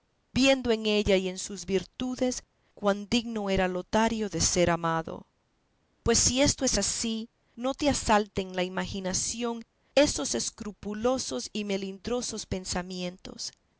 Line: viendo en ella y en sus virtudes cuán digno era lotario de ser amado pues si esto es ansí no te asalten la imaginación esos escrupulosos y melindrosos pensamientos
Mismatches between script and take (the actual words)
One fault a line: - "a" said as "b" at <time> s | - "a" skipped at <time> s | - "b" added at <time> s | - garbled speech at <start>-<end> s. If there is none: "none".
none